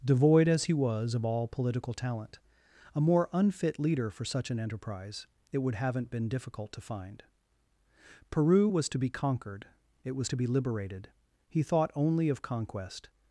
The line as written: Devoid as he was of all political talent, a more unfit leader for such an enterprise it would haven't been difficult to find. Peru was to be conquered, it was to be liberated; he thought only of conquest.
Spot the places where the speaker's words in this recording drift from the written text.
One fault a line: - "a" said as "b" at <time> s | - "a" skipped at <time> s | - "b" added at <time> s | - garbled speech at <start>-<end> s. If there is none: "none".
none